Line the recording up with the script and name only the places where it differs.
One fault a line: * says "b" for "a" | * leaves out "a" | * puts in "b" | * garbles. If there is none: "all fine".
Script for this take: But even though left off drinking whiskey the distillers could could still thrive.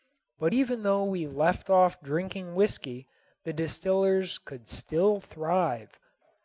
* puts in "we"
* leaves out "could"